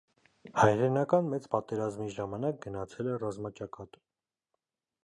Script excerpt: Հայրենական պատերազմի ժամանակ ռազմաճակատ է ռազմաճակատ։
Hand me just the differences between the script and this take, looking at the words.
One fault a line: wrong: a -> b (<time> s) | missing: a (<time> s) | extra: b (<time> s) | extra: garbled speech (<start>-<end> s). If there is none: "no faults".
extra: մեծ (1.3 s)
wrong: ռազմաճակատ -> գնացել (2.7 s)